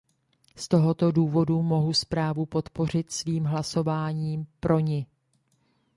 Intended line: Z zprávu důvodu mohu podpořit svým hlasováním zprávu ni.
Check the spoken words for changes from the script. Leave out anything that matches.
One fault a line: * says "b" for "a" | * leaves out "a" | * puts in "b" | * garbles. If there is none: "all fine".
* says "tohoto" for "zprávu"
* puts in "zprávu"
* says "pro" for "zprávu"